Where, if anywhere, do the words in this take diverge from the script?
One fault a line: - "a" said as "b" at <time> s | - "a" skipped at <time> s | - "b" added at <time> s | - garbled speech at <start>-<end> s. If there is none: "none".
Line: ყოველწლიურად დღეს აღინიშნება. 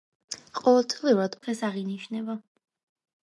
none